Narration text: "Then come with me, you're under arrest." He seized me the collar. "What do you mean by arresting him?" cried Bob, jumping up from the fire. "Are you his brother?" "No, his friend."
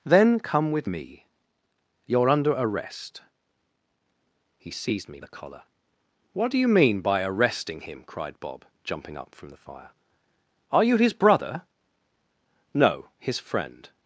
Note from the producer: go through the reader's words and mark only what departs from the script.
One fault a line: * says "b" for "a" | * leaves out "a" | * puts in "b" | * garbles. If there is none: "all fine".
all fine